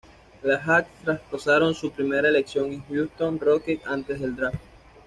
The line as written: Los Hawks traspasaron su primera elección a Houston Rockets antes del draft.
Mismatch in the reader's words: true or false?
false